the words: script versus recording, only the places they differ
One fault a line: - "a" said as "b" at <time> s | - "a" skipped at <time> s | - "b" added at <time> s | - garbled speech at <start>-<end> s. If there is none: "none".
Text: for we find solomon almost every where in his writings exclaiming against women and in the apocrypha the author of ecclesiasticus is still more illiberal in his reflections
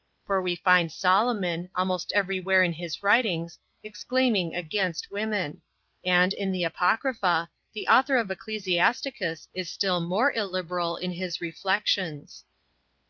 none